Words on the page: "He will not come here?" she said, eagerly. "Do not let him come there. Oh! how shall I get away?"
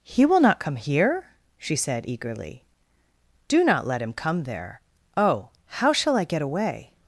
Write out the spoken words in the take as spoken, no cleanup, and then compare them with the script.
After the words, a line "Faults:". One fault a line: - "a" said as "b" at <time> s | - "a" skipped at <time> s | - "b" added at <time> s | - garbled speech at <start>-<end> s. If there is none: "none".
"He will not come here?" she said, eagerly. "Do not let him come there. Oh! how shall I get away?"
Faults:
none